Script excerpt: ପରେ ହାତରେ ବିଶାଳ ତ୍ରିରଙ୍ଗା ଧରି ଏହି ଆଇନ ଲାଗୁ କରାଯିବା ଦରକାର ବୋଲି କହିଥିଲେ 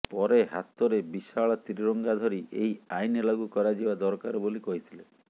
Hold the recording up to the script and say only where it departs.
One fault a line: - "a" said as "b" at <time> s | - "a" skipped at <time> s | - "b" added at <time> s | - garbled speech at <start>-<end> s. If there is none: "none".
none